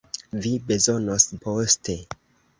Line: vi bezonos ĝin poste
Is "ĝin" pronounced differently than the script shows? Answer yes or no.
yes